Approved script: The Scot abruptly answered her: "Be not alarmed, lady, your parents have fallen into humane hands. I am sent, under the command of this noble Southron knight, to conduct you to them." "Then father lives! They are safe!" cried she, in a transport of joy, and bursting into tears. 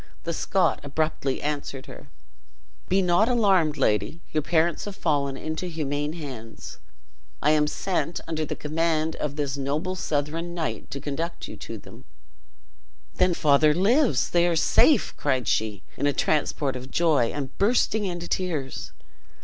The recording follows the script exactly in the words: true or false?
true